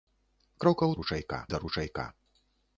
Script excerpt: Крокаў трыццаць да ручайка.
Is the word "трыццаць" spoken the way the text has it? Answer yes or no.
no